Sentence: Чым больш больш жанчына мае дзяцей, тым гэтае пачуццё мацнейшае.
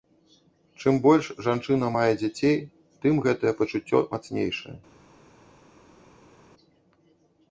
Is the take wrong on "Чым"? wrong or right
right